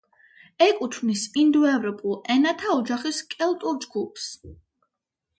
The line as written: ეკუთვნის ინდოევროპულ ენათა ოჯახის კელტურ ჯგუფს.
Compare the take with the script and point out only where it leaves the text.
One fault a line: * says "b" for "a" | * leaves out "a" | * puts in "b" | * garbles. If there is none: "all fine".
all fine